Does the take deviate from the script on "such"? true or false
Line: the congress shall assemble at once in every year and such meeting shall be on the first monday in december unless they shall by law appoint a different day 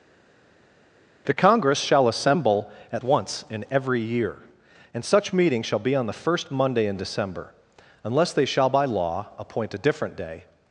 false